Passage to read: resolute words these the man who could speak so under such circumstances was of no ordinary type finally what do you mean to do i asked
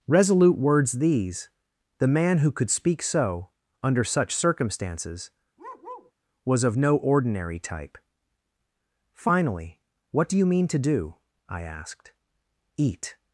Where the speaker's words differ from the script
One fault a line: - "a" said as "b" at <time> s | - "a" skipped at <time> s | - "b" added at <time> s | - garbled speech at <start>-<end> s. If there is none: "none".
- "eat" added at 12.8 s